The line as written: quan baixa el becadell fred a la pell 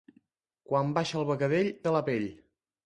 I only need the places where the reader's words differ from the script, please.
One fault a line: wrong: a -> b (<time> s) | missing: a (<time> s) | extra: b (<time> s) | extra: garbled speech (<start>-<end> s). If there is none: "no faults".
missing: fred (1.7 s)